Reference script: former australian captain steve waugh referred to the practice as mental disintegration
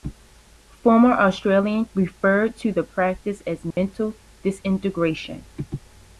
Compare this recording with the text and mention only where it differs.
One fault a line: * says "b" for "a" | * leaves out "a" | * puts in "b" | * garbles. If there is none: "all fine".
* leaves out "captain steve waugh"